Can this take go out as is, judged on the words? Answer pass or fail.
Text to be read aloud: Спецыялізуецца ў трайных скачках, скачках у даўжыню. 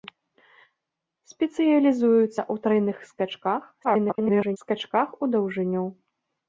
fail